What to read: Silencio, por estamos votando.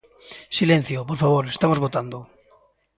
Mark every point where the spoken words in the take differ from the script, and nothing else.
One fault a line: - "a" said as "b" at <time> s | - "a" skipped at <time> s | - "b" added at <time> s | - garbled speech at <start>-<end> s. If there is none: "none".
- "favor" added at 1.2 s